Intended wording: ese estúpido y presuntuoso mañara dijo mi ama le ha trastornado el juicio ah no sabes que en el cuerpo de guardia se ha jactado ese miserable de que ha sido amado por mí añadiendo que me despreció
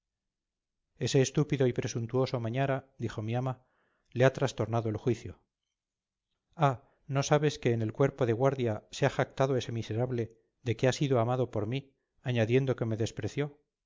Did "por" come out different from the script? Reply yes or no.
no